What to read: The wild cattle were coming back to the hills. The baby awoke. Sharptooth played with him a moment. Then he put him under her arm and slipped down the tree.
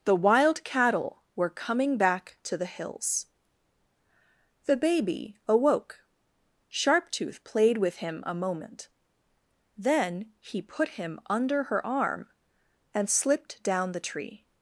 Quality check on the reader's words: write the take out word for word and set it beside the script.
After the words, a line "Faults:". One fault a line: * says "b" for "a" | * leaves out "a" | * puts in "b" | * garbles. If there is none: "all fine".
The wild cattle were coming back to the hills. The baby awoke. Sharptooth played with him a moment. Then he put him under her arm and slipped down the tree.
Faults:
all fine